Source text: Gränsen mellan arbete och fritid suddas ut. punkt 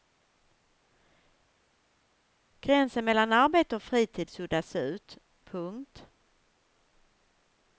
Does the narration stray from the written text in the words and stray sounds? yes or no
no